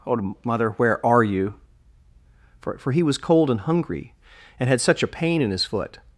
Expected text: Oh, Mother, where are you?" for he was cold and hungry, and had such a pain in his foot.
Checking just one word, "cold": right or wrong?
right